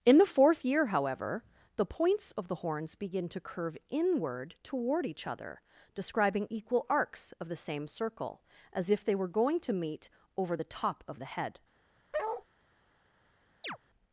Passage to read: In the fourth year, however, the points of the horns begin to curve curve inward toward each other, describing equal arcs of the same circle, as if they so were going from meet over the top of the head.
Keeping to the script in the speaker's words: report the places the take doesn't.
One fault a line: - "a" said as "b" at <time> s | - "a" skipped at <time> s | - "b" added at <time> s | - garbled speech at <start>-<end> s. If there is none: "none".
- "curve" skipped at 3.8 s
- "so" skipped at 9.1 s
- "from" said as "to" at 9.6 s